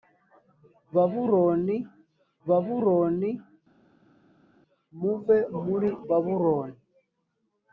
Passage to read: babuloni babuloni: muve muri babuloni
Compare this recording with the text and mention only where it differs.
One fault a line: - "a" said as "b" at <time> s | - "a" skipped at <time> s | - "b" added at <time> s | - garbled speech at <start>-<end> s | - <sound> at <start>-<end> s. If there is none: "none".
none